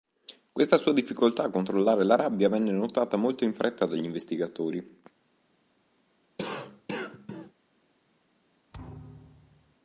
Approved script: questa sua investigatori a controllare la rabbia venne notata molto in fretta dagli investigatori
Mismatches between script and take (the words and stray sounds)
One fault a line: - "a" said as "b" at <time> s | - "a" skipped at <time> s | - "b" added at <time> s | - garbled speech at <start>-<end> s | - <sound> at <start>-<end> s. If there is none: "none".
- "investigatori" said as "difficoltà" at 0.9 s
- cough at 6.4-7.5 s
- thud at 8.7-9.8 s